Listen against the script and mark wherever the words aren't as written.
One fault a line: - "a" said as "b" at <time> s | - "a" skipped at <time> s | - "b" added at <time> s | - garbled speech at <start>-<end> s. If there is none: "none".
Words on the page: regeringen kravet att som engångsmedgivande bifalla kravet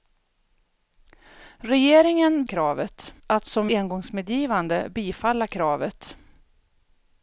none